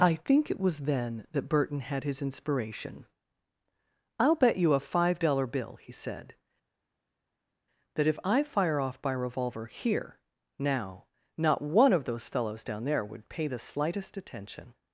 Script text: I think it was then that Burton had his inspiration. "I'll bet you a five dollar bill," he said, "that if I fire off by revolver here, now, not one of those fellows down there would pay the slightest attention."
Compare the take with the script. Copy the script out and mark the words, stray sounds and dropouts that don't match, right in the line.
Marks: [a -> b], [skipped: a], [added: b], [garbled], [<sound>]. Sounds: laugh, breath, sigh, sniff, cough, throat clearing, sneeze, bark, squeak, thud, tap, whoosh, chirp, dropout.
I think it was then that Burton had his inspiration. "I'll bet you a five dollar bill," he said, "that if I fire off by revolver here, now, not one of those fellows down there would pay the slightest attention."